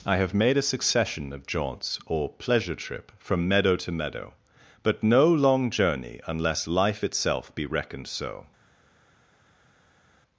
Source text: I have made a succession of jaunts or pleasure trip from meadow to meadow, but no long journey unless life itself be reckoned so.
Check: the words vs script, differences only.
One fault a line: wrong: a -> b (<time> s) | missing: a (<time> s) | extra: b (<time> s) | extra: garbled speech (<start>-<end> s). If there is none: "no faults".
no faults